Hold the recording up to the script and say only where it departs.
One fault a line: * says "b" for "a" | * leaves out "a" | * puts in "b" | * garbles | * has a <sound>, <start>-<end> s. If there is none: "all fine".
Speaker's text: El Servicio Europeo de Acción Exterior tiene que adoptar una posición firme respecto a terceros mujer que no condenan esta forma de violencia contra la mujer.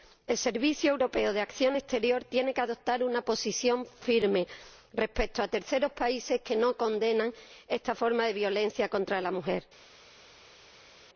* says "países" for "mujer"